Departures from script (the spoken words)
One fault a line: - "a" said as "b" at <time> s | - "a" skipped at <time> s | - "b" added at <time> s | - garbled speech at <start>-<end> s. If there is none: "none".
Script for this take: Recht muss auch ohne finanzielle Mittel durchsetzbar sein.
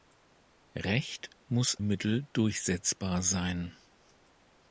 - "auch ohne finanzielle" skipped at 1.8 s